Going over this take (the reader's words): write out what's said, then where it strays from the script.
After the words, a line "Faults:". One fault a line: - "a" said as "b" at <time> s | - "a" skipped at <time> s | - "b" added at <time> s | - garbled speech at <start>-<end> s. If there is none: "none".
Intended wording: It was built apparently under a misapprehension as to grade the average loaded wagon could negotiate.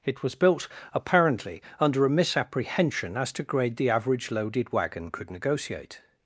It was built apparently under a misapprehension as to grade the average loaded wagon could negotiate.
Faults:
none